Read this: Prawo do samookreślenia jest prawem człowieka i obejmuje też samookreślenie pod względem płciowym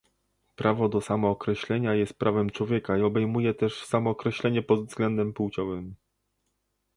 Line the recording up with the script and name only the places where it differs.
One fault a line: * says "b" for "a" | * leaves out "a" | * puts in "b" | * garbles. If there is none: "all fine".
all fine